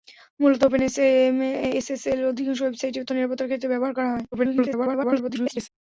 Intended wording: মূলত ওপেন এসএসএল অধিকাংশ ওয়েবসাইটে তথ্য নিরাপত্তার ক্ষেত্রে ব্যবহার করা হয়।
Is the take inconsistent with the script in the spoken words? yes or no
yes